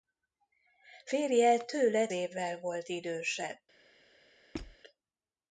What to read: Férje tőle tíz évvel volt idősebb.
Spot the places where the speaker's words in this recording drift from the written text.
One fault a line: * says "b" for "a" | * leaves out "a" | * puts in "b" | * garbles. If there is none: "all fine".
* leaves out "tíz"